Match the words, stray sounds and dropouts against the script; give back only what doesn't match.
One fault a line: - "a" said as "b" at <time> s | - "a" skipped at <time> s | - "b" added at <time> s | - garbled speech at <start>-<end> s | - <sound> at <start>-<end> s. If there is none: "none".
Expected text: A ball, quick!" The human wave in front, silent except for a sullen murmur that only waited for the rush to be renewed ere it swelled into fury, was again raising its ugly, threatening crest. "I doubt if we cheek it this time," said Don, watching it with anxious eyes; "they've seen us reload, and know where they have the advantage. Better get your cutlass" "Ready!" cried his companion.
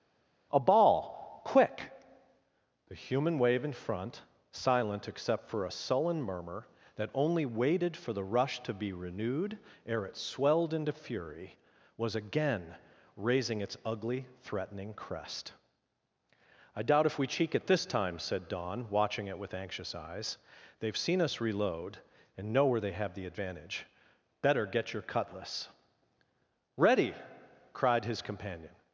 none